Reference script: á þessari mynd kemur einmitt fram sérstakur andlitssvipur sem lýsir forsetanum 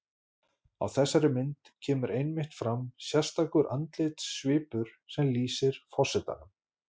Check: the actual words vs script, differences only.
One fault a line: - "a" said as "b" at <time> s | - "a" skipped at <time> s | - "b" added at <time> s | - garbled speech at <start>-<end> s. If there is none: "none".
none